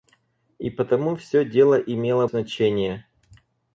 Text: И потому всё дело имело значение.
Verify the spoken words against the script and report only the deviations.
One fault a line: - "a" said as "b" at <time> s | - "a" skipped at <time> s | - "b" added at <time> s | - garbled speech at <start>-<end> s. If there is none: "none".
none